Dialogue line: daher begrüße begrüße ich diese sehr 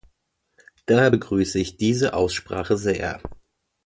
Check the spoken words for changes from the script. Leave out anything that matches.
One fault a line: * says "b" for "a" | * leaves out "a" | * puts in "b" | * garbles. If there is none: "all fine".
* leaves out "begrüße"
* puts in "aussprache"